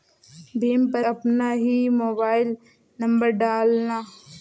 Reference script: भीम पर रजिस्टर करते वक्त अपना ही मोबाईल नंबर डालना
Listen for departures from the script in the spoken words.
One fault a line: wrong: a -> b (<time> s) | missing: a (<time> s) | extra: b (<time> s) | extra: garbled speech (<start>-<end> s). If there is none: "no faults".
missing: रजिस्टर करते वक्त (1.1 s)